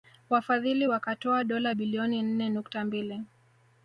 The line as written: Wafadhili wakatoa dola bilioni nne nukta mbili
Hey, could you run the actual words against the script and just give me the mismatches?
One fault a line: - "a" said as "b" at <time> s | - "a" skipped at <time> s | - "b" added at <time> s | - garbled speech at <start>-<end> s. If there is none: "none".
none